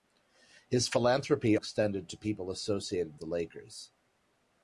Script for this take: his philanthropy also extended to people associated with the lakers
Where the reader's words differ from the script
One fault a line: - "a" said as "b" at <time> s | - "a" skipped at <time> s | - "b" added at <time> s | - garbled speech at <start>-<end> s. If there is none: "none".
- "also" skipped at 1.6 s
- "with" skipped at 3.2 s